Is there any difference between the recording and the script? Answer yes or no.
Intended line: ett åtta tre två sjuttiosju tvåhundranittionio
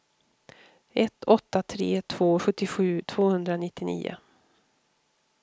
no